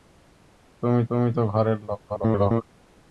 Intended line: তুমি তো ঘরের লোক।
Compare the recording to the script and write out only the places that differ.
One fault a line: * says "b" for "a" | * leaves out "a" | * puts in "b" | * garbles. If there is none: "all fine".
* puts in "তুমি"
* garbles